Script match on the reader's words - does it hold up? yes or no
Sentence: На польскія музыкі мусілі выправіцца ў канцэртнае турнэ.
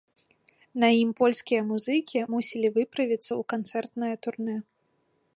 no